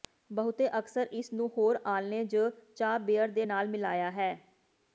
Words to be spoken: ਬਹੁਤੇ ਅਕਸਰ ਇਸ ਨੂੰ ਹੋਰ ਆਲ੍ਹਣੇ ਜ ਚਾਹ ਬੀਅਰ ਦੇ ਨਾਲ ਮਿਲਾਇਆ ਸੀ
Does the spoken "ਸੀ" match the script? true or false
false